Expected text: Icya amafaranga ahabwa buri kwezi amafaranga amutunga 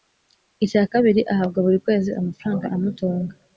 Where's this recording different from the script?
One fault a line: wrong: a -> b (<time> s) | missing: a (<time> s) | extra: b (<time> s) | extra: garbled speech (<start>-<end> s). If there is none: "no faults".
wrong: amafaranga -> kabiri (0.9 s)